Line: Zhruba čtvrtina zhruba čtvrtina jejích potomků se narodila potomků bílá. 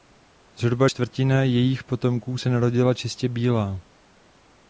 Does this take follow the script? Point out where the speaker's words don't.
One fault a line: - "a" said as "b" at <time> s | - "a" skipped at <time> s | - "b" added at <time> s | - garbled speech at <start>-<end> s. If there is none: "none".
- "zhruba čtvrtina" skipped at 1.4 s
- "potomků" said as "čistě" at 2.9 s